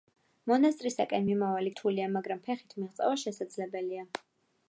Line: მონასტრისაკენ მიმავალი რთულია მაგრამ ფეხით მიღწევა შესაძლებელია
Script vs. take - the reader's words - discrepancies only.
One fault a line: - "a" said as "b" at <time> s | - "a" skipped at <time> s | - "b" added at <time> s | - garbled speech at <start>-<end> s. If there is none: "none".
none